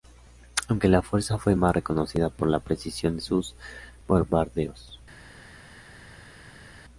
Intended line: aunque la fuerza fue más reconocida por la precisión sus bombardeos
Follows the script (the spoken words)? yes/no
yes